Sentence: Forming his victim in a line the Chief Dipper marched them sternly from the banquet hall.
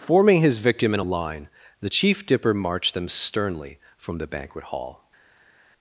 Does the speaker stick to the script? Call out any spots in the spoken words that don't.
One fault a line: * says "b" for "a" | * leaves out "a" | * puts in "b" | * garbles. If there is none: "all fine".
all fine